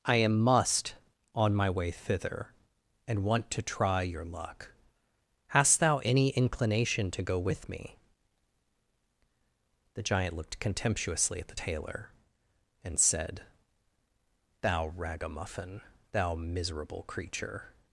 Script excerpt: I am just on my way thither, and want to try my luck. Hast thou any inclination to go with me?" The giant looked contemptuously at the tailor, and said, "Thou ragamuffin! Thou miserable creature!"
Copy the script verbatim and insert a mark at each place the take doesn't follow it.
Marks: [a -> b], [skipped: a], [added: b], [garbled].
I am [just -> must] on my way thither, and want to try [my -> your] luck. Hast thou any inclination to go with me?" The giant looked contemptuously at the tailor, and said, "Thou ragamuffin! Thou miserable creature!"